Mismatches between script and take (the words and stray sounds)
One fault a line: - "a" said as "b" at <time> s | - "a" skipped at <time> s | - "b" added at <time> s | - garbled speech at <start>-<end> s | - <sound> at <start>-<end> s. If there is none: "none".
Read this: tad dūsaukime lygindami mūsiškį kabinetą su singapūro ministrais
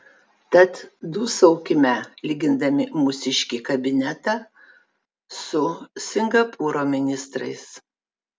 none